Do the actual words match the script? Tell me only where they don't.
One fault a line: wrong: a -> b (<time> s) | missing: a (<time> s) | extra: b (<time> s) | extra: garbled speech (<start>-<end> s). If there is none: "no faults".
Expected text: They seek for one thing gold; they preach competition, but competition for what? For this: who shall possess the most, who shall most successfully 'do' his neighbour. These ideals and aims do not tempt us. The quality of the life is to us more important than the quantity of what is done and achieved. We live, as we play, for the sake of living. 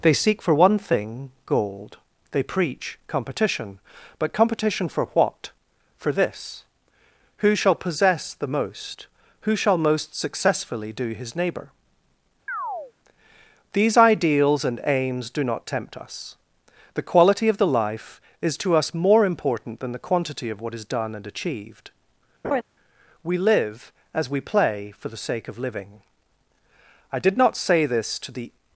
extra: I did not say this to the (27.1 s)